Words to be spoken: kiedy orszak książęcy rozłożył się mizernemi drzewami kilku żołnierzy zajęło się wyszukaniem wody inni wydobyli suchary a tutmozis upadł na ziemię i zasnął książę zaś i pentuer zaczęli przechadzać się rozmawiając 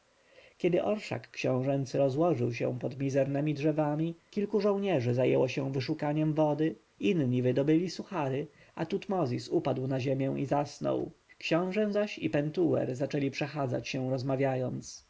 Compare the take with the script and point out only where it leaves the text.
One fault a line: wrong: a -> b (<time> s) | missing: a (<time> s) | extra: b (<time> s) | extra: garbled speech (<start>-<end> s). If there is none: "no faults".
extra: pod (2.8 s)